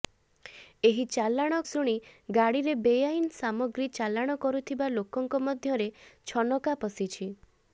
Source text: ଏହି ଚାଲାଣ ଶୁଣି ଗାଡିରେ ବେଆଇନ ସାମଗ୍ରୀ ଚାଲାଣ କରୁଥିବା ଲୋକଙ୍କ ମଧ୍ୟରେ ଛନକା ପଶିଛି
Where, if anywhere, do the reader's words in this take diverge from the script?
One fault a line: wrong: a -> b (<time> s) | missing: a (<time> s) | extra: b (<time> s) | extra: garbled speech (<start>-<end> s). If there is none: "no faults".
no faults